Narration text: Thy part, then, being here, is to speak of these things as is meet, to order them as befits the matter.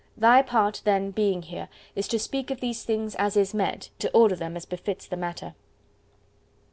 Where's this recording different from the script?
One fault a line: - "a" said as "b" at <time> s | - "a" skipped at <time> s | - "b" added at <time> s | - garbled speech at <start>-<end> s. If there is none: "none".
none